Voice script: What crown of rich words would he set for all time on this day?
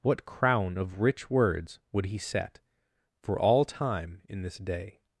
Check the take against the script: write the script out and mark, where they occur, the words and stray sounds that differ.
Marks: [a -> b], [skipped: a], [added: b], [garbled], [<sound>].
What crown of rich words would he set for all time [on -> in] this day?